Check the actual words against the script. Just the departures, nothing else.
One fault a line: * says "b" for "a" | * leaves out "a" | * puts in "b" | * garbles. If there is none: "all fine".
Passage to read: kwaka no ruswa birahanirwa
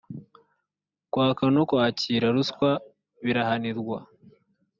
* puts in "kwakira"